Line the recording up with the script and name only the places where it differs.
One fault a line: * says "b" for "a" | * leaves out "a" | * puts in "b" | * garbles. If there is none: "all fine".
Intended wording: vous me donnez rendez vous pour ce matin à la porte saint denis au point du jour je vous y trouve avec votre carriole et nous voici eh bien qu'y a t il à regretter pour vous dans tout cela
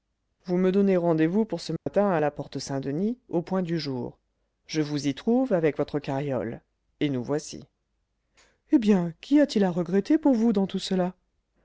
all fine